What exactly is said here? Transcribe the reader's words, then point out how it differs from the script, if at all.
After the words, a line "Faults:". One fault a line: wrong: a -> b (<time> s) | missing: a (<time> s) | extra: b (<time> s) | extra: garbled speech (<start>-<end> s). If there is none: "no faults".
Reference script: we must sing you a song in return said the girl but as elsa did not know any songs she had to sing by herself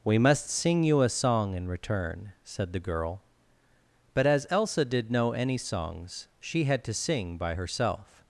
we must sing you a song in return said the girl but as elsa did know any songs she had to sing by herself
Faults:
missing: not (5.1 s)